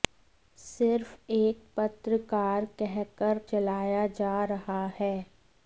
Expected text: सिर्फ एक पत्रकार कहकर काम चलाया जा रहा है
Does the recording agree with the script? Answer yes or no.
no